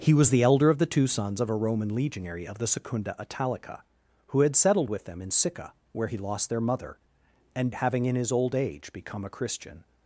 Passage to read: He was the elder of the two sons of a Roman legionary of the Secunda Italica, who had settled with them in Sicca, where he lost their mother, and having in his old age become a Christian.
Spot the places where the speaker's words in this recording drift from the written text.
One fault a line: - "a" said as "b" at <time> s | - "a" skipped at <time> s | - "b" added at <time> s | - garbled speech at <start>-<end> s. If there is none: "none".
none